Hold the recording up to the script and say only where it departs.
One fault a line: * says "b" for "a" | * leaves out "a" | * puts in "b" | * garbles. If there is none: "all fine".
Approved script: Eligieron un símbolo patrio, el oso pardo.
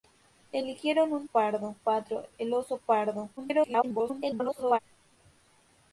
* says "pardo" for "símbolo"
* garbles